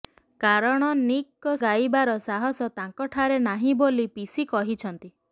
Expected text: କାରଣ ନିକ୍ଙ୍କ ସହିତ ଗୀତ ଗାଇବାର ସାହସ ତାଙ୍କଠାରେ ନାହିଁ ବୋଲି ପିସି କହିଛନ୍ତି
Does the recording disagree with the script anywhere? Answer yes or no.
yes